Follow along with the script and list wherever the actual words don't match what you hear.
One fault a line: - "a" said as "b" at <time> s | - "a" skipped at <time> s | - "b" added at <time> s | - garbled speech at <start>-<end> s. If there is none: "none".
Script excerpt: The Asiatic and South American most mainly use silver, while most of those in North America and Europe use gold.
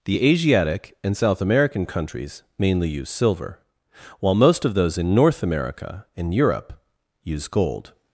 - "most" said as "countries" at 1.8 s